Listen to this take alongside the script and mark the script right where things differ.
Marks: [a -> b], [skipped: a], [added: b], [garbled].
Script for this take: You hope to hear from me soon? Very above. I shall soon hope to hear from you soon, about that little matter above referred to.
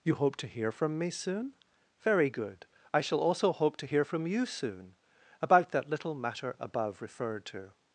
You hope to hear from me soon? Very [above. -> good] I shall [soon -> also] hope to hear from you soon, about that little matter above referred to.